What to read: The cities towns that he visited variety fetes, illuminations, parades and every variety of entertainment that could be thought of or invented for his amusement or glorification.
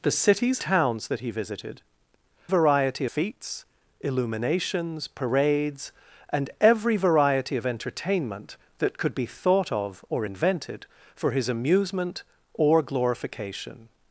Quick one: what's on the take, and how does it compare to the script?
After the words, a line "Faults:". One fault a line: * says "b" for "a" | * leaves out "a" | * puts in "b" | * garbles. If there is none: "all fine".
The cities towns that he visited variety fetes, illuminations, parades and every variety of entertainment that could be thought of or invented for his amusement or glorification.
Faults:
all fine